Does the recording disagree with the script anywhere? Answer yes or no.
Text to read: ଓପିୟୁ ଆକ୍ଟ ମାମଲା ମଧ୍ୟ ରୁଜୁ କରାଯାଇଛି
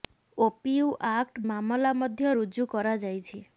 no